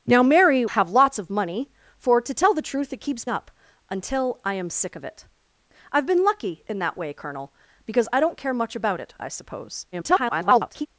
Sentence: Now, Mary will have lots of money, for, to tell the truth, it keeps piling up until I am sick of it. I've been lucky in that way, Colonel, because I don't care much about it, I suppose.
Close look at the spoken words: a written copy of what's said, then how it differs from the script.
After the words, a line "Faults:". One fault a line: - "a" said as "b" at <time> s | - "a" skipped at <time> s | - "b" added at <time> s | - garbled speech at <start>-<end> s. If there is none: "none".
Now, Mary have lots of money, for, to tell the truth, it keeps up until I am sick of it. I've been lucky in that way, Colonel, because I don't care much about it, I suppose. [garbled]
Faults:
- "will" skipped at 0.7 s
- "piling" skipped at 3.2 s
- garbled speech at 9.9-10.9 s